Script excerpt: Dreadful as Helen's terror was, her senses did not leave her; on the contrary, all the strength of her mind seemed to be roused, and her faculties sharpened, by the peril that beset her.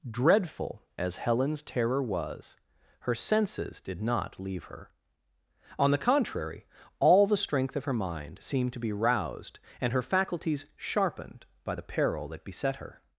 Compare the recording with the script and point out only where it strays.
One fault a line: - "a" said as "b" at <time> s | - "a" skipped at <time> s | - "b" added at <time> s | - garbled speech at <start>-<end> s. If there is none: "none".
none